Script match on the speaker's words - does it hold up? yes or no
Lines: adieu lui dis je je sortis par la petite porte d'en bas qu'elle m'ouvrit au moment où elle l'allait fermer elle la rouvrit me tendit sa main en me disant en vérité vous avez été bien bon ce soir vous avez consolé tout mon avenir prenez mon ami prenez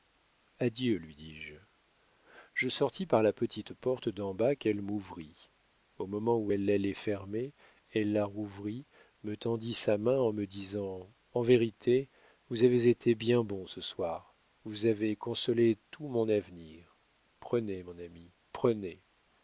yes